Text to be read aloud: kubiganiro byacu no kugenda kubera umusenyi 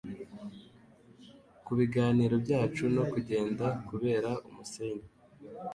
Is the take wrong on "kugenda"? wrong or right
right